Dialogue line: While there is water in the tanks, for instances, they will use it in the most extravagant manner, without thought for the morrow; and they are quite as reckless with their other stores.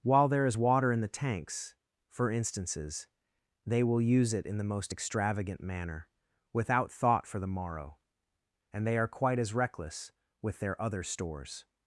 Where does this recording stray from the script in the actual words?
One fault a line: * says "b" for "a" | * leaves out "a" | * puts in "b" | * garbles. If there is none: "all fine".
all fine